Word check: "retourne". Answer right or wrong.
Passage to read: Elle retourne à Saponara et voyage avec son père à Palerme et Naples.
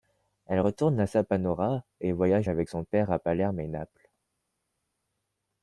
right